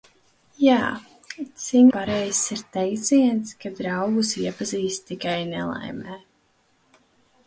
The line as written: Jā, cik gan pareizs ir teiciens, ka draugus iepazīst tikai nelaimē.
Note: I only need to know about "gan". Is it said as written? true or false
false